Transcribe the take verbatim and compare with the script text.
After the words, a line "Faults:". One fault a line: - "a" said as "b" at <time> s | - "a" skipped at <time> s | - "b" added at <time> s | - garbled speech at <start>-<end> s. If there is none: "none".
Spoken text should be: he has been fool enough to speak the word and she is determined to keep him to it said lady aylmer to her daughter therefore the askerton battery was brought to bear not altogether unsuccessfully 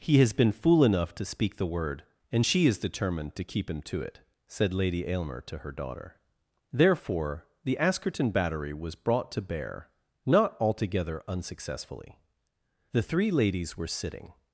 he has been fool enough to speak the word and she is determined to keep him to it said lady aylmer to her daughter therefore the askerton battery was brought to bear not altogether unsuccessfully the three ladies were sitting
Faults:
- "the three ladies were sitting" added at 12.9 s